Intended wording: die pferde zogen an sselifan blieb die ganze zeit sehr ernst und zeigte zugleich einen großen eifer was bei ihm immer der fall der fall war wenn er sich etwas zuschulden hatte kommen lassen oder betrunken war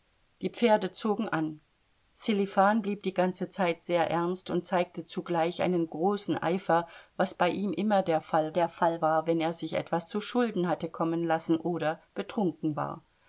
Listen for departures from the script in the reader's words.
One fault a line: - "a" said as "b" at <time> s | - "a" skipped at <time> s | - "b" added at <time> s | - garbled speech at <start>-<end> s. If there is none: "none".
none